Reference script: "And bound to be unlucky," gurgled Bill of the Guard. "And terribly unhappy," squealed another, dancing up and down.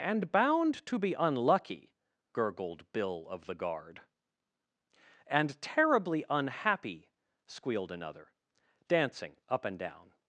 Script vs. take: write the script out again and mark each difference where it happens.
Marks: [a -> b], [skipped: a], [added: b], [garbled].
"And bound to be unlucky," gurgled Bill of the Guard. "And terribly unhappy," squealed another, dancing up and down.